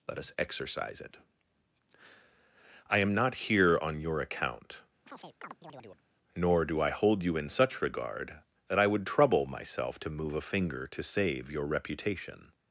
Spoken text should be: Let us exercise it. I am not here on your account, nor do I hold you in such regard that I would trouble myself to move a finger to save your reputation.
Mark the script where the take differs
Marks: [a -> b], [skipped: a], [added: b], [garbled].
Let us exercise it. I am not here on your account, nor do I hold you in such regard that I would trouble myself to move a finger to save your reputation.